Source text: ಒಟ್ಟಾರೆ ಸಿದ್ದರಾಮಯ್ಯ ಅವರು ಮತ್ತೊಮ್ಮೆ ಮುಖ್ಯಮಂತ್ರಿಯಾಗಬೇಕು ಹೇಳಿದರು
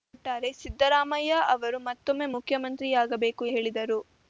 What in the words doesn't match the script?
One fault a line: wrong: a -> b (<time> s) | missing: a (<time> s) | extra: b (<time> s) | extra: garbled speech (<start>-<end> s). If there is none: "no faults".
no faults